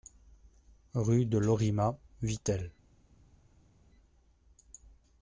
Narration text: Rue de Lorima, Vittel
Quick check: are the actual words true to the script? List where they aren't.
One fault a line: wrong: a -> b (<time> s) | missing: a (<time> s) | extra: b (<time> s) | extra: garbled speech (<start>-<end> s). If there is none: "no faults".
no faults